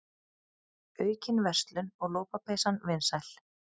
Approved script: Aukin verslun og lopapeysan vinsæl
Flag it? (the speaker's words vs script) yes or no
no